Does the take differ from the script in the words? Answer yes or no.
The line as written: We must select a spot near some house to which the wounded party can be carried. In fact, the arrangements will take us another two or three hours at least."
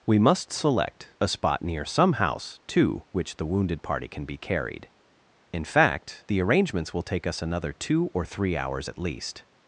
no